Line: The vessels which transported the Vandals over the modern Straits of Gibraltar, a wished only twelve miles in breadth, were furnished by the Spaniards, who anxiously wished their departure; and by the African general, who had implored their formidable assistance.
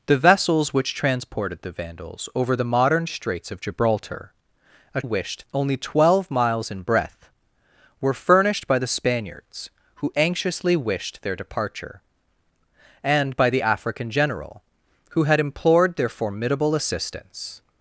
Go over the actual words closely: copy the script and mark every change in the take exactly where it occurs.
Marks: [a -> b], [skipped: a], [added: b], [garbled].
The vessels which transported the Vandals over the modern Straits of Gibraltar, a wished only twelve miles in breadth, were furnished by the Spaniards, who anxiously wished their departure; and by the African general, who had implored their formidable assistance.